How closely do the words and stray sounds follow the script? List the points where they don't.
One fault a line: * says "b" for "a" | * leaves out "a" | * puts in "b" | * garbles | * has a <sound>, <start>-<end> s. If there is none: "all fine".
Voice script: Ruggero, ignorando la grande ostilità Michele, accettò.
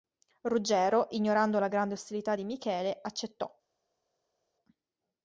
* puts in "di"